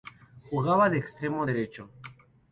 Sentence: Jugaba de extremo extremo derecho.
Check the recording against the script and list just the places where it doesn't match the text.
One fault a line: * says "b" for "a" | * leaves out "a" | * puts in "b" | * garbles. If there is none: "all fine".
* leaves out "extremo"